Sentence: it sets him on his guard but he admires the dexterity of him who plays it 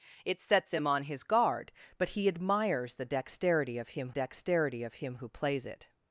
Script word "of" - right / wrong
right